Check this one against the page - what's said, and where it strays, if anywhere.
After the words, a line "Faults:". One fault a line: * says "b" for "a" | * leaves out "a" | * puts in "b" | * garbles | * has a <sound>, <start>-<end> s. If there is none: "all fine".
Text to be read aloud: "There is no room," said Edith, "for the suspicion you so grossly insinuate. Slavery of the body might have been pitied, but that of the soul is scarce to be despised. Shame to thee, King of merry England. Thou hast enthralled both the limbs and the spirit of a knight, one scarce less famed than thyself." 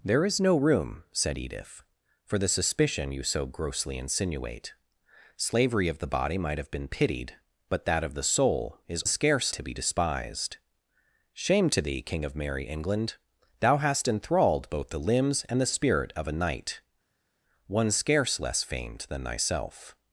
"There is no room," said Edith, "for the suspicion you so grossly insinuate. Slavery of the body might have been pitied, but that of the soul is scarce to be despised. Shame to thee, King of merry England. Thou hast enthralled both the limbs and the spirit of a knight, one scarce less famed than thyself."
Faults:
all fine